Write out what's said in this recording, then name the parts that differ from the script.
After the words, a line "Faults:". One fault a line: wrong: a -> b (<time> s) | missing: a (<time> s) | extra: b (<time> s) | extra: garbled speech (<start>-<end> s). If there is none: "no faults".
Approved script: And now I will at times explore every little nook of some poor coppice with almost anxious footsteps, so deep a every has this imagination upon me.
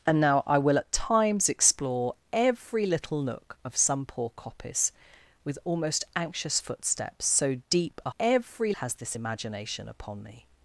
And now I will at times explore every little nook of some poor coppice with almost anxious footsteps, so deep a every has this imagination upon me.
Faults:
no faults